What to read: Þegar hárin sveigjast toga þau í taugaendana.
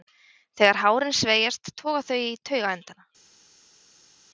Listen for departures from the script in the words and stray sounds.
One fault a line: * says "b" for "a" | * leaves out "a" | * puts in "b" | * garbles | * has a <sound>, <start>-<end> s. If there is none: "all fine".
all fine